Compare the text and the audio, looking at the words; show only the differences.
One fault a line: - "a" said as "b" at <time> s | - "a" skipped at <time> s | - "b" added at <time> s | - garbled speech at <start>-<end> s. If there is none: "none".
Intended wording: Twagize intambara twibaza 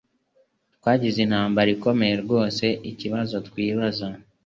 - "ikomeye rwose ikibazo" added at 1.8 s